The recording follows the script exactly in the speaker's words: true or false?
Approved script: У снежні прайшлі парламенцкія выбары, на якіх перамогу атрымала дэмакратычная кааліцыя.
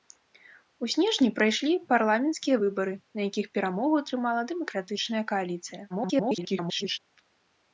false